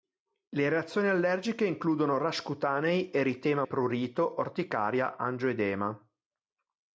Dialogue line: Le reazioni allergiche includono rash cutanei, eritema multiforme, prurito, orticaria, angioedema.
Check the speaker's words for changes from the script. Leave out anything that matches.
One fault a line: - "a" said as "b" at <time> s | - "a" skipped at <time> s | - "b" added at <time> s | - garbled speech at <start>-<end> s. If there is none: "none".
- "multiforme" skipped at 3.6 s